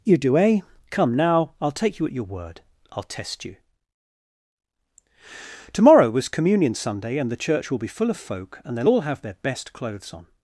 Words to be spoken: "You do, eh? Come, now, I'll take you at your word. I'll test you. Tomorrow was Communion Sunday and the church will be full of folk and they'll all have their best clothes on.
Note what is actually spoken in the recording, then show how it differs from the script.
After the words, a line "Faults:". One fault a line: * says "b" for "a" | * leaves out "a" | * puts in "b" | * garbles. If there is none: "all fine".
"You do, eh? Come, now, I'll take you at your word. I'll test you. Tomorrow was Communion Sunday and the church will be full of folk and they'll all have their best clothes on.
Faults:
all fine